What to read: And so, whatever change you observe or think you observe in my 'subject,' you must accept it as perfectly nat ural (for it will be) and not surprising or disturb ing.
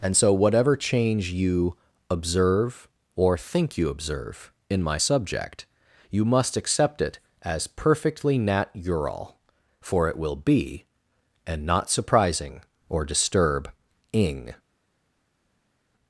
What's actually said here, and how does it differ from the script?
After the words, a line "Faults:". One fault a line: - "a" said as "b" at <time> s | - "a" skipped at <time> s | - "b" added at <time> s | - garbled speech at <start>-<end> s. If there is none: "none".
And so, whatever change you observe or think you observe in my 'subject,' you must accept it as perfectly nat ural (for it will be) and not surprising or disturb ing.
Faults:
none